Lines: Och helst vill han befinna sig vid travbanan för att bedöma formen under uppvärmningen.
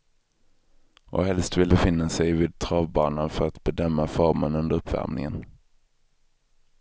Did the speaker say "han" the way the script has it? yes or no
no